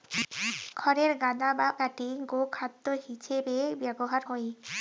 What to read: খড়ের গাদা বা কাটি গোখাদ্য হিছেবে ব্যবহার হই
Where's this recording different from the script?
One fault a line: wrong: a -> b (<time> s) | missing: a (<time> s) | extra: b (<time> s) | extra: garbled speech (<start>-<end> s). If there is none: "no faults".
no faults